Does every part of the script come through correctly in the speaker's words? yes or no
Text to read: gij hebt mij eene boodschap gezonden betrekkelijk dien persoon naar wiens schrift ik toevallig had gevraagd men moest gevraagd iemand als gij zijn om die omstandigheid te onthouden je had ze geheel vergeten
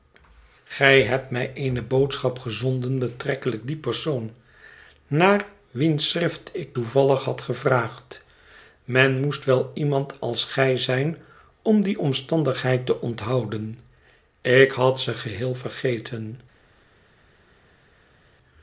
no